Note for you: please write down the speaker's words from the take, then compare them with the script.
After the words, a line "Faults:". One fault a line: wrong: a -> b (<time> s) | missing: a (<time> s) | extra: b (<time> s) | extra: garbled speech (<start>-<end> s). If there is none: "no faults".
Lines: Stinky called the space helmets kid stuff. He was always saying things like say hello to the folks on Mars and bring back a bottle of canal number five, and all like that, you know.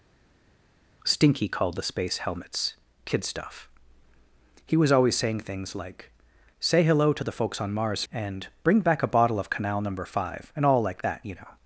Stinky called the space helmets kid stuff. He was always saying things like say hello to the folks on Mars and bring back a bottle of canal number five, and all like that, you know.
Faults:
no faults